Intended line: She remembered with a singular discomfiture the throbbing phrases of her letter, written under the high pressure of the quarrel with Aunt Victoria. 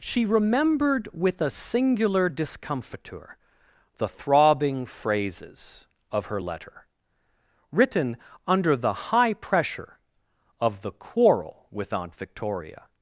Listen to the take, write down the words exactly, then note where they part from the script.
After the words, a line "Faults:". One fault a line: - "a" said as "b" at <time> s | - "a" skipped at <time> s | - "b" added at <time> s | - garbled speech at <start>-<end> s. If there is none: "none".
She remembered with a singular discomfiture the throbbing phrases of her letter, written under the high pressure of the quarrel with Aunt Victoria.
Faults:
none